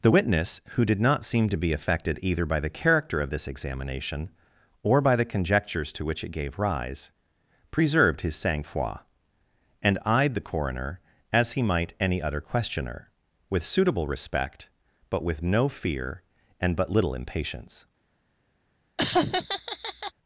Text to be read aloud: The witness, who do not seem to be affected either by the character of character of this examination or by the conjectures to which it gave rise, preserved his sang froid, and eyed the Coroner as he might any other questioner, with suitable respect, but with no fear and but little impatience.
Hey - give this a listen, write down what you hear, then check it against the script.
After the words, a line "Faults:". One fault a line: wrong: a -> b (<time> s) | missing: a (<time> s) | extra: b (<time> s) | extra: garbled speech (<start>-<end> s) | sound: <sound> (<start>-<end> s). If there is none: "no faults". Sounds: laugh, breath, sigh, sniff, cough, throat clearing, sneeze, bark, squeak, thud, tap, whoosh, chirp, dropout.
The witness, who did not seem to be affected either by the character of this examination or by the conjectures to which it gave rise, preserved his sang froid, and eyed the Coroner as he might any other questioner, with suitable respect, but with no fear and but little impatience.
Faults:
wrong: do -> did (0.8 s)
missing: character of (3.3 s)
sound: laugh (19.0-20.1 s)